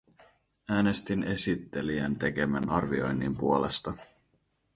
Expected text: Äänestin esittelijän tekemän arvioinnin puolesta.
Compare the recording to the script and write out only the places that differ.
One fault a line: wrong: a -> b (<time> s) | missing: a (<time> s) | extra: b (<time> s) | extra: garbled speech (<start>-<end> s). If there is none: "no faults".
no faults